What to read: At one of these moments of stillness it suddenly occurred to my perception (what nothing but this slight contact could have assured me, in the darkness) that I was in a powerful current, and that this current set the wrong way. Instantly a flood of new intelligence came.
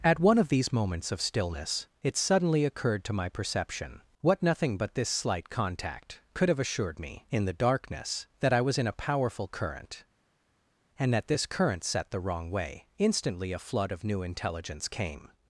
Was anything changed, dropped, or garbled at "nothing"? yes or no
no